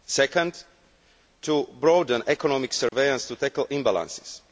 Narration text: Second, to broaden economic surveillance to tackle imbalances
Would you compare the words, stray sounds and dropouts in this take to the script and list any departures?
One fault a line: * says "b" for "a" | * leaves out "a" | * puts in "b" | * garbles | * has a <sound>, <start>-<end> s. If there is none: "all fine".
* has a dropout, 2.9-2.9 s